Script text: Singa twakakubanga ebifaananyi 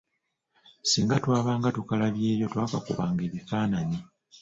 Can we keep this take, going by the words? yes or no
no